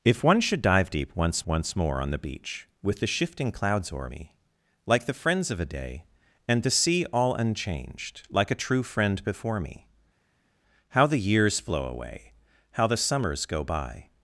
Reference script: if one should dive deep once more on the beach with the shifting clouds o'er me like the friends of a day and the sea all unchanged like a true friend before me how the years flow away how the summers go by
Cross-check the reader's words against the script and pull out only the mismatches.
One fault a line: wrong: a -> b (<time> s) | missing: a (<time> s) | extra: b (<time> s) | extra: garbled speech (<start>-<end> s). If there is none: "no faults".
extra: once (1.5 s)